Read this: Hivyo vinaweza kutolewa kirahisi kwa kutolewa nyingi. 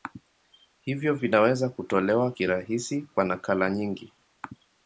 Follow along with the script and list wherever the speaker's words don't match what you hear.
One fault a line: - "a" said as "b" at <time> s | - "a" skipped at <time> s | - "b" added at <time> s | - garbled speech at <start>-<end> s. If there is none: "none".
- "kutolewa" said as "nakala" at 3.2 s